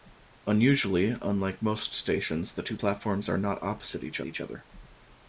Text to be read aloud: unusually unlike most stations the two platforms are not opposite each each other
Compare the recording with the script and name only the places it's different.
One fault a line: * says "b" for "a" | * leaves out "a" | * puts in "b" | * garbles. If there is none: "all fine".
all fine